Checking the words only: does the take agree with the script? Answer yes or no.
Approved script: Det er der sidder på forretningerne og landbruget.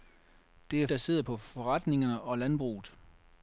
yes